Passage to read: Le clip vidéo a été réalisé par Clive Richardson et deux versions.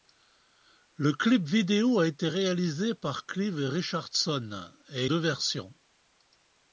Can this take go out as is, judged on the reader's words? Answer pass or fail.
pass